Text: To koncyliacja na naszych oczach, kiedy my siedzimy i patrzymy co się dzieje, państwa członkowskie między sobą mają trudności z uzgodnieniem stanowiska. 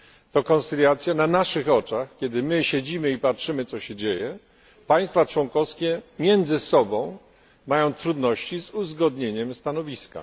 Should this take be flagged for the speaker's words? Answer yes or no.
no